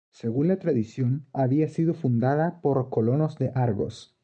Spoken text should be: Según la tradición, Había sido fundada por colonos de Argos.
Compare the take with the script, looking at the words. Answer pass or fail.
pass